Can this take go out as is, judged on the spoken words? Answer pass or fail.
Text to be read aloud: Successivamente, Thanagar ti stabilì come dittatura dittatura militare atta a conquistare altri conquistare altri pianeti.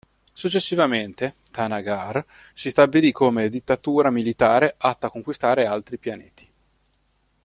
fail